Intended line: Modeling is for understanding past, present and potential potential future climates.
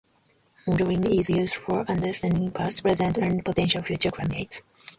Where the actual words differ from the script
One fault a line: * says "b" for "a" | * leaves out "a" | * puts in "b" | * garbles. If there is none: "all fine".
* puts in "used"
* leaves out "potential"